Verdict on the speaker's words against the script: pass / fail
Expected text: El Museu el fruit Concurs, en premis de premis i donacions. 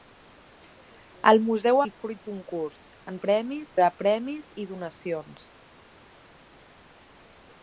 pass